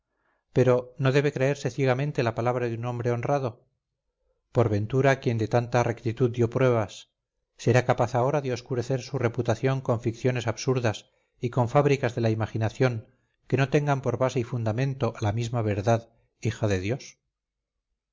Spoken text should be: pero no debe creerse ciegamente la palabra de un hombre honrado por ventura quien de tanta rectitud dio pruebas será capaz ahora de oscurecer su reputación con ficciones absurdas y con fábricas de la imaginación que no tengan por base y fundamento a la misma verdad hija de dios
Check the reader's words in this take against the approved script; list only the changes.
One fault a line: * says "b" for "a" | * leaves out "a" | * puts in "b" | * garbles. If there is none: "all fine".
all fine